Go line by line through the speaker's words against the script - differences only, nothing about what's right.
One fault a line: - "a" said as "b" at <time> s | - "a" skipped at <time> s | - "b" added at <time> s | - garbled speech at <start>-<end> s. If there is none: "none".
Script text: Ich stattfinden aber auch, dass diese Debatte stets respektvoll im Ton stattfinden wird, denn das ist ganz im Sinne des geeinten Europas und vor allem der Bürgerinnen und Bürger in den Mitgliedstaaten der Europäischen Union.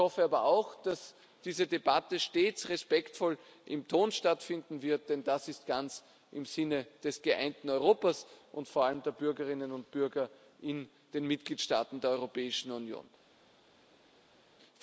- "stattfinden" said as "hoffe" at 0.0 s